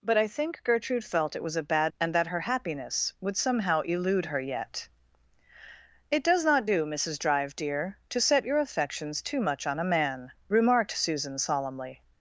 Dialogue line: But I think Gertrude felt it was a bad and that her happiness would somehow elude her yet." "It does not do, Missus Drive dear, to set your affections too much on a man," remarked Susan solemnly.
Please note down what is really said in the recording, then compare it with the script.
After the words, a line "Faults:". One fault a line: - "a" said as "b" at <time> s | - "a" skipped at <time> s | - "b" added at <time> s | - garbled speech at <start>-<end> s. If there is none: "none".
But I think Gertrude felt it was a bad and that her happiness would somehow elude her yet." "It does not do, Missus Drive dear, to set your affections too much on a man," remarked Susan solemnly.
Faults:
none